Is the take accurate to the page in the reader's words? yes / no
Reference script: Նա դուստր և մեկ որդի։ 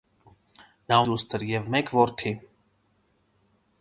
yes